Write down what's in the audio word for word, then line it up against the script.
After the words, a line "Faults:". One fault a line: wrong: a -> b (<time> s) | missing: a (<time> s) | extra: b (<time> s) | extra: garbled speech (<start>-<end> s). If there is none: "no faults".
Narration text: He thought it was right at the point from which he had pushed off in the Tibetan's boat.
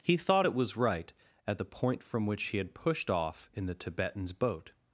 He thought it was right at the point from which he had pushed off in the Tibetan's boat.
Faults:
no faults